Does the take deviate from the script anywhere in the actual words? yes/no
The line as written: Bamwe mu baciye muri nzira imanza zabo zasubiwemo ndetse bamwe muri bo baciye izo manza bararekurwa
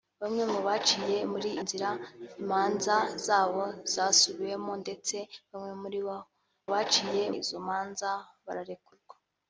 no